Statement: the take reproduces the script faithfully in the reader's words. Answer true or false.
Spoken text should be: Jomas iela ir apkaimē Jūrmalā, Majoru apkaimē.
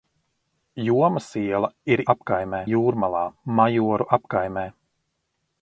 true